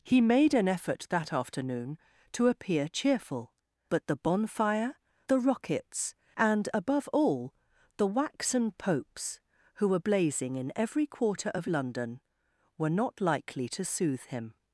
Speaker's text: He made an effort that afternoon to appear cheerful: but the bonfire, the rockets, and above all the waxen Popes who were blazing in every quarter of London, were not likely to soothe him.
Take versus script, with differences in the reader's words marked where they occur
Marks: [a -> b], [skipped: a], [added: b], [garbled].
He made an effort that afternoon to appear cheerful: but the bonfire, the rockets, and above all the waxen Popes who were blazing in every quarter of London, were not likely to soothe him.